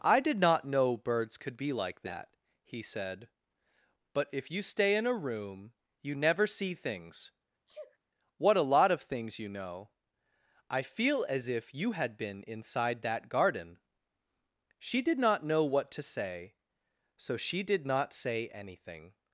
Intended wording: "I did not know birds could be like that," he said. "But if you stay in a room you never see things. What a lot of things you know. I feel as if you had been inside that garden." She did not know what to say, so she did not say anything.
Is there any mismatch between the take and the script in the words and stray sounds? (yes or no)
yes